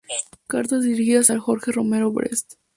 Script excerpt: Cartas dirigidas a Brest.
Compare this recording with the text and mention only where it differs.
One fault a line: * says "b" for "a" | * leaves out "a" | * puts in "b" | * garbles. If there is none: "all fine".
* puts in "Jorge Romero"